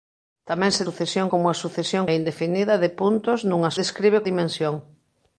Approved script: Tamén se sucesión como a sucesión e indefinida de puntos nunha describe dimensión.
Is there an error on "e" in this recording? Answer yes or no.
no